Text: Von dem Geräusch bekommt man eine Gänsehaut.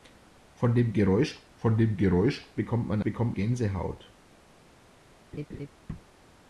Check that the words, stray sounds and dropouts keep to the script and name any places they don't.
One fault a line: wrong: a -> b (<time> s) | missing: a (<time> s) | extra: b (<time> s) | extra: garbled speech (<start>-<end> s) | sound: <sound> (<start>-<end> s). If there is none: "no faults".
extra: von dem Geräusch (1.6 s)
wrong: eine -> bekommt (3.0 s)
sound: laugh (5.3-5.7 s)